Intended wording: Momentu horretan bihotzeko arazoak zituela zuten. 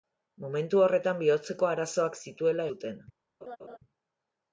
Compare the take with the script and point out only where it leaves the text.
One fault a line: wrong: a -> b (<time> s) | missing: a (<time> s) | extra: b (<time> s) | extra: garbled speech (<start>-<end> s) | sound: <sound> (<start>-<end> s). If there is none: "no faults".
sound: laugh (3.4-3.8 s)